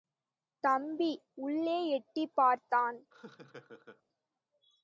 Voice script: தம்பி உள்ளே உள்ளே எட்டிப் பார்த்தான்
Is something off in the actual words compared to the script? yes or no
yes